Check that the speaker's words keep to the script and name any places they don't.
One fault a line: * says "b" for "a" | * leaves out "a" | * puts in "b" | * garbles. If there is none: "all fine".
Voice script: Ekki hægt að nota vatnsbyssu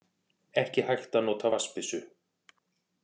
all fine